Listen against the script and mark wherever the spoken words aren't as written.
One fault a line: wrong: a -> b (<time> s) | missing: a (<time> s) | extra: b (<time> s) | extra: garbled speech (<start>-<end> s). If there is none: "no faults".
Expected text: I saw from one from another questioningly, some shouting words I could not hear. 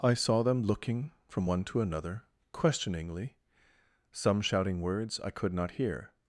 extra: them looking (0.4 s)
wrong: from -> to (1.7 s)